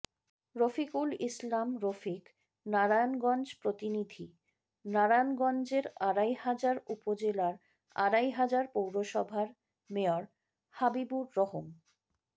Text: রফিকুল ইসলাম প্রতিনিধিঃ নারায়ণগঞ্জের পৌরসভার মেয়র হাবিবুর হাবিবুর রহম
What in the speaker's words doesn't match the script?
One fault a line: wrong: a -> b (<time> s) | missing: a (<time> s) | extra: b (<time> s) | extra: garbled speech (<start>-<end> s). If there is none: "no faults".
extra: রফিক নারায়ণগঞ্জ (1.8 s)
extra: আড়াইহাজার উপজেলার আড়াইহাজার (6.1 s)
missing: হাবিবুর (11.3 s)